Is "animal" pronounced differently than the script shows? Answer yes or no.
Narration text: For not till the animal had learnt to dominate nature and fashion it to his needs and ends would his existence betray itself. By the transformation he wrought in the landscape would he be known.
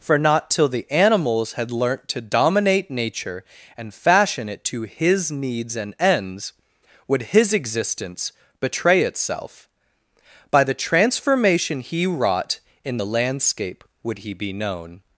yes